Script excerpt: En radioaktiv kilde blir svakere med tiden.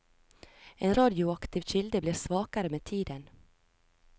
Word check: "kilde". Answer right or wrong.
right